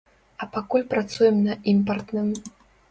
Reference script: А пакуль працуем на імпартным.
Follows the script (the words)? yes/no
yes